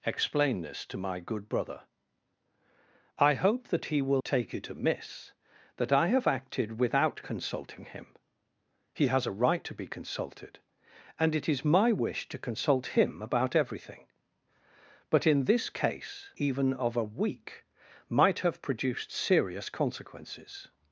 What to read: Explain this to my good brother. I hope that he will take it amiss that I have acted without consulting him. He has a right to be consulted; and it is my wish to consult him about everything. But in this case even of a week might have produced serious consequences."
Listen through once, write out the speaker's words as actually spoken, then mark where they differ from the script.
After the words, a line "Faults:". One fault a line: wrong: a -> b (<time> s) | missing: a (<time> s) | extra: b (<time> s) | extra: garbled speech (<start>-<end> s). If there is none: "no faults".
Explain this to my good brother. I hope that he will take it amiss that I have acted without consulting him. He has a right to be consulted; and it is my wish to consult him about everything. But in this case even of a week might have produced serious consequences."
Faults:
no faults